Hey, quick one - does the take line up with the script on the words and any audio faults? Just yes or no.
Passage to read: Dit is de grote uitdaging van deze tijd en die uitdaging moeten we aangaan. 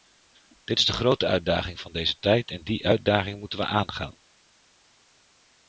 yes